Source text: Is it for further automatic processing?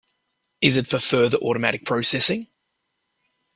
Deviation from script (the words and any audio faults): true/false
false